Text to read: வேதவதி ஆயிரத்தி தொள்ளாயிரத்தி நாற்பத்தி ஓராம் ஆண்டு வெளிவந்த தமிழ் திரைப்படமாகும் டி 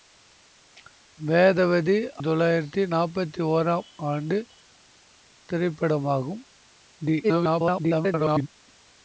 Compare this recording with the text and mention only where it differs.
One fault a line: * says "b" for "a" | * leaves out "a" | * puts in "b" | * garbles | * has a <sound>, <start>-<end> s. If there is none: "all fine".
* leaves out "ஆயிரத்தி"
* leaves out "வெளிவந்த தமிழ்"
* garbles